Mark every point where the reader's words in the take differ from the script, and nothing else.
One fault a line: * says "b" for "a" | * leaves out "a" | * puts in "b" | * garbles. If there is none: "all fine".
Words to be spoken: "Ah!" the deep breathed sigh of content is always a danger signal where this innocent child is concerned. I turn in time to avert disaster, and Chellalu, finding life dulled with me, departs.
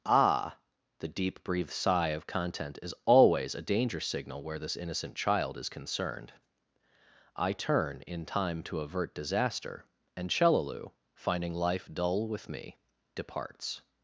* says "dull" for "dulled"